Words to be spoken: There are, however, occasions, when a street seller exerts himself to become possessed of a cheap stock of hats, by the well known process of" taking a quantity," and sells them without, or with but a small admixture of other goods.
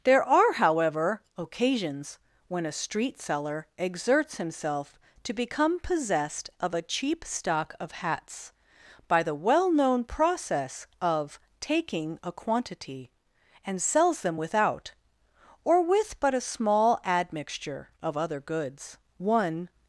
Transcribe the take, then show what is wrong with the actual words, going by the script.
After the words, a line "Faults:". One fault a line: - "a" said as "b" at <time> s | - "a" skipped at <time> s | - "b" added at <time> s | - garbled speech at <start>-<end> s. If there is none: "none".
There are, however, occasions, when a street seller exerts himself to become possessed of a cheap stock of hats, by the well known process of" taking a quantity," and sells them without, or with but a small admixture of other goods. One
Faults:
- "One" added at 19.2 s